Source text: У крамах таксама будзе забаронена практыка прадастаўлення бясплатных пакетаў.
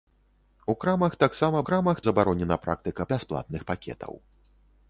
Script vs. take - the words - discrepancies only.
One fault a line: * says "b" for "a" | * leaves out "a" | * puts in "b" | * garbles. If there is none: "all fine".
* says "крамах" for "будзе"
* leaves out "прадастаўлення"